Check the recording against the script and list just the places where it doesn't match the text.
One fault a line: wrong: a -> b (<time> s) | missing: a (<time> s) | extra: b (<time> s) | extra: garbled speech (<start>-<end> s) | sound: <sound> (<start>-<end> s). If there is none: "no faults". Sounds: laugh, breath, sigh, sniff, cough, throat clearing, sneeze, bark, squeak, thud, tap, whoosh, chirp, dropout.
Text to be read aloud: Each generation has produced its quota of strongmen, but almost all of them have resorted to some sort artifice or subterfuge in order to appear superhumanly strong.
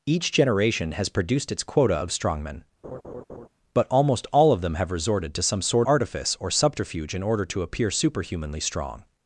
sound: laugh (2.8-3.5 s)